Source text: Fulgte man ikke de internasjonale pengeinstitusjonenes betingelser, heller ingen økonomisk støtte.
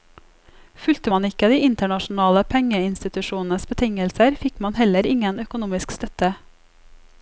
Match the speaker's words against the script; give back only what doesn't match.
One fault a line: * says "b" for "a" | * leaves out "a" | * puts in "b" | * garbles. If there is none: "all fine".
* puts in "fikk man"